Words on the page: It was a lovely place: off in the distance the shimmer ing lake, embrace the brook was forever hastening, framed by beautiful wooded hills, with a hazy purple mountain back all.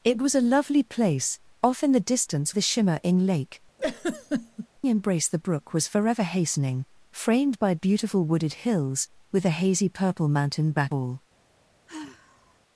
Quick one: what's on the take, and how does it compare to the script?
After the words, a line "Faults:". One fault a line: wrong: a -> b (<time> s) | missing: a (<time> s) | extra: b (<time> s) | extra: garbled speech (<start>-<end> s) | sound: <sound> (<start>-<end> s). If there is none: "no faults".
It was a lovely place: off in the distance the shimmer ing lake, embrace the brook was forever hastening, framed by beautiful wooded hills, with a hazy purple mountain back all.
Faults:
sound: laugh (3.8-4.7 s)
sound: sigh (11.9-12.6 s)